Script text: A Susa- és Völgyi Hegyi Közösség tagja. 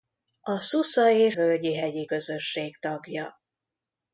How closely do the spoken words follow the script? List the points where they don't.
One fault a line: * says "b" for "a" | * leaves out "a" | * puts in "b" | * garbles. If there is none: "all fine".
all fine